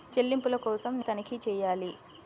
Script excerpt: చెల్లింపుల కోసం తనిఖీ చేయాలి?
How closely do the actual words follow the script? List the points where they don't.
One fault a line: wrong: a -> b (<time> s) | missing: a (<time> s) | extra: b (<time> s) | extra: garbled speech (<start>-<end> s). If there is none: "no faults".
no faults